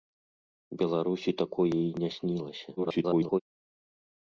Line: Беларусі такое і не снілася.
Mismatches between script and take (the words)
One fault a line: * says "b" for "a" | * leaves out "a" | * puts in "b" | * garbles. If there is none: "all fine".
* garbles